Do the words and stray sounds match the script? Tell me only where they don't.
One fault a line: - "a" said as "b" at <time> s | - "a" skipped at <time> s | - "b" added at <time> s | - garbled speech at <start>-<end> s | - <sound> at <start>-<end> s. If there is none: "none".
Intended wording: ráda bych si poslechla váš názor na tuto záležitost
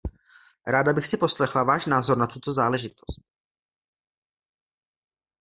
none